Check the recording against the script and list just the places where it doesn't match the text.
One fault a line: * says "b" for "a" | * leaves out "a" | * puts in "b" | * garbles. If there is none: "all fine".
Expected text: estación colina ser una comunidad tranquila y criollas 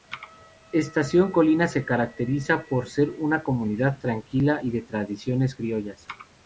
* puts in "se caracteriza por"
* puts in "de tradiciones"